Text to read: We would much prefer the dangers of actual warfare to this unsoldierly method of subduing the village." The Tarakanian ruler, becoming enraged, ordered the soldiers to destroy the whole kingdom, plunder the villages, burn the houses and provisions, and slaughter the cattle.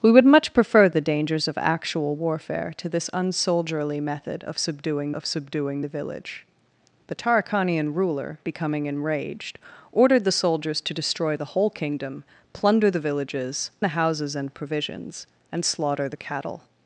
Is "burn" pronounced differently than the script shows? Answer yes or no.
yes